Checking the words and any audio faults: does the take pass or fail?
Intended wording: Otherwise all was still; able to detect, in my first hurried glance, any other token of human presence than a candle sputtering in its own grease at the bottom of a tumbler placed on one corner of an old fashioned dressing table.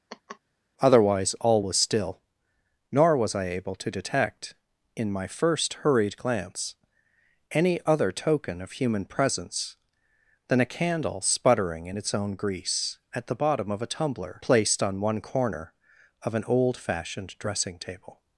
fail